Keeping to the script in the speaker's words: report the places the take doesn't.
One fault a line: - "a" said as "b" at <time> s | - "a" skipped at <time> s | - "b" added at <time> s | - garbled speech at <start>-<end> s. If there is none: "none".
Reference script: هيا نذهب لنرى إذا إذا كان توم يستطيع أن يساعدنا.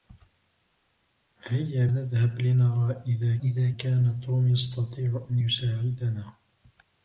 none